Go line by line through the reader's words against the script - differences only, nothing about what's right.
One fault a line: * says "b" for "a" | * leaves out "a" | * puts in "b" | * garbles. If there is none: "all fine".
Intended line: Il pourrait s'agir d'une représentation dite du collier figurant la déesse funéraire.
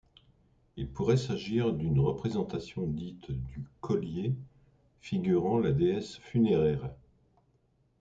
all fine